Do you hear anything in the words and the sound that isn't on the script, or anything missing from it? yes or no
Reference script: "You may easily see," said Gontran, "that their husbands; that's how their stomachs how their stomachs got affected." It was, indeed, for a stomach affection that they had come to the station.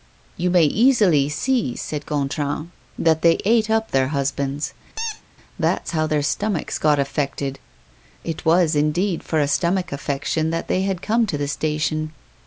yes